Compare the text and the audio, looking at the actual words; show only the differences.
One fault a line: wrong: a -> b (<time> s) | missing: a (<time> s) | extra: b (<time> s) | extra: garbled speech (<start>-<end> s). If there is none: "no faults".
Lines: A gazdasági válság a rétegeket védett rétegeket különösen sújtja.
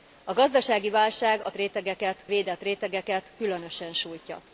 no faults